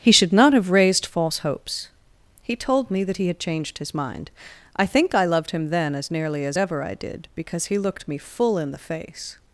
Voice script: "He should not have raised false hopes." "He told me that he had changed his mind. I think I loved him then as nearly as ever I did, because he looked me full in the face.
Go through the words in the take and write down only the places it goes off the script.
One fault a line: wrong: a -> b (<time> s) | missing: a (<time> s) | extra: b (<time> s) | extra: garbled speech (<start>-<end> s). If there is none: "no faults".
no faults